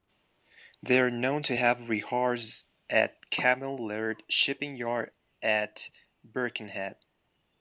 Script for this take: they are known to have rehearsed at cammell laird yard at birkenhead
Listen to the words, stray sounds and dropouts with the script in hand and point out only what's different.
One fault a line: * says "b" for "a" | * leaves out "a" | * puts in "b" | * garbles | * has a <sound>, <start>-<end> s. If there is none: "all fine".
* puts in "shipping"